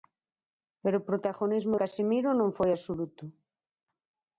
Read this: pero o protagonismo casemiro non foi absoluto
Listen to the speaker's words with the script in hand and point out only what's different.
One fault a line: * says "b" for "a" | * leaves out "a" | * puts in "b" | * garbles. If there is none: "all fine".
all fine